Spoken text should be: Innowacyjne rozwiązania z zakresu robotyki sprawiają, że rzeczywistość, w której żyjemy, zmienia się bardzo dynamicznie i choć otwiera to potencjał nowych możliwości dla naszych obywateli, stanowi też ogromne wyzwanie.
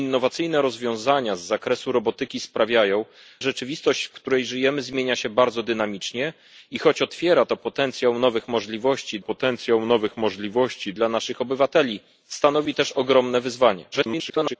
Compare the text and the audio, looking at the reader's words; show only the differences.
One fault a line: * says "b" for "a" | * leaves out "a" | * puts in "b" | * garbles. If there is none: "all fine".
* leaves out "że"
* puts in "potencjał nowych możliwości"
* garbles